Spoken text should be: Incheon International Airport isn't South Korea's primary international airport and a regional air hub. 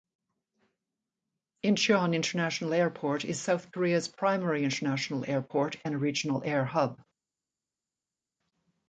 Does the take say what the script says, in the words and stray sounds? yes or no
no